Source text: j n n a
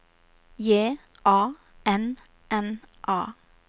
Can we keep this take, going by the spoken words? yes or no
no